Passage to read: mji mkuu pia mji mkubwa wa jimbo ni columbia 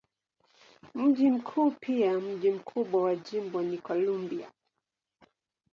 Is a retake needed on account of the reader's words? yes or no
no